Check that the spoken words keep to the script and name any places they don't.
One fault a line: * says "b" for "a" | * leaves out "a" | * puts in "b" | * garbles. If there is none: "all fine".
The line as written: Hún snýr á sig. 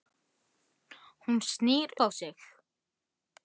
all fine